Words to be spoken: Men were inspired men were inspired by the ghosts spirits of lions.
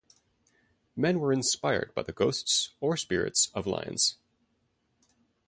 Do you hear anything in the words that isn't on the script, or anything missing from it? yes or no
yes